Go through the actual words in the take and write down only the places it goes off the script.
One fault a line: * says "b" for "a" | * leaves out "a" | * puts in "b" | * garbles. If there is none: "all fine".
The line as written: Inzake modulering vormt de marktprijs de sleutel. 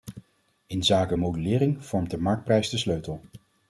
all fine